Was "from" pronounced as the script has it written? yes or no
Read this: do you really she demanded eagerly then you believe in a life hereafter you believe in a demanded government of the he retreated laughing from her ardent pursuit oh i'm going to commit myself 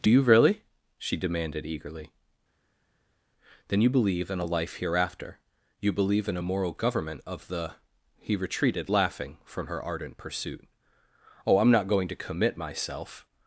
yes